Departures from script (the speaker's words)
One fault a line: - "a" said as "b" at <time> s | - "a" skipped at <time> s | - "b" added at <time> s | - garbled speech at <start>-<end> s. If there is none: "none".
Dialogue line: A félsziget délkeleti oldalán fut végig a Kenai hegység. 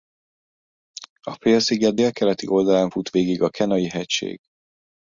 none